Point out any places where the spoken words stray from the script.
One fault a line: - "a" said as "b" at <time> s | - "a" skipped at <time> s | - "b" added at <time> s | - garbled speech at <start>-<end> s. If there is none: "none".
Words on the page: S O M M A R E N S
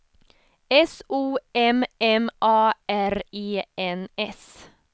none